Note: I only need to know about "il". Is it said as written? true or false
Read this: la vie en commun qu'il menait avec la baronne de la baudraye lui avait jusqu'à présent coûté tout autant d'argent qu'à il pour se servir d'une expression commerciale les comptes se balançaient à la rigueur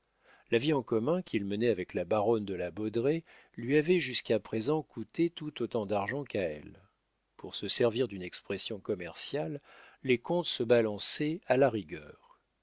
false